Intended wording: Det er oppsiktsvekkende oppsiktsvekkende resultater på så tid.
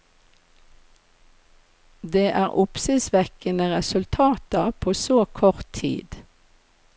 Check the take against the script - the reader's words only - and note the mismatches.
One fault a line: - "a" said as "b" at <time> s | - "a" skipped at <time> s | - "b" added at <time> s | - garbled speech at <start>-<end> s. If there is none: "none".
- "oppsiktsvekkende" skipped at 3.7 s
- "kort" added at 5.4 s